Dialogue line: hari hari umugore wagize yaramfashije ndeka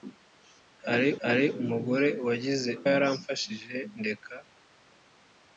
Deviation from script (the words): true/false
false